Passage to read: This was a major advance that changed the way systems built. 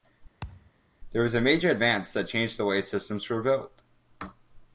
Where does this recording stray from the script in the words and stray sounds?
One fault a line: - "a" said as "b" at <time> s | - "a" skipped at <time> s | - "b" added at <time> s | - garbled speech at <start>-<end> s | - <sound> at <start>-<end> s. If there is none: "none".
- thud at 0.4-0.7 s
- "were" added at 3.3 s